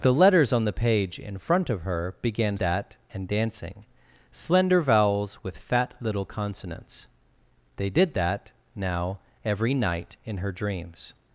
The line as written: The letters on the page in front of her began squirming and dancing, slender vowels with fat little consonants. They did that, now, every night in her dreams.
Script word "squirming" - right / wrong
wrong